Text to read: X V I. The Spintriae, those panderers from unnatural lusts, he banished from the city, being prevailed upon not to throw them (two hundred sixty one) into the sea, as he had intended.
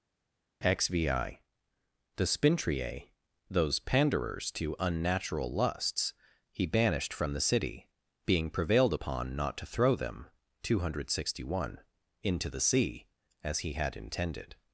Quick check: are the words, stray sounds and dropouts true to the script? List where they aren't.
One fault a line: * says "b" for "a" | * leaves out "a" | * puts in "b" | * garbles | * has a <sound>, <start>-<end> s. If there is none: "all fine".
* says "to" for "from"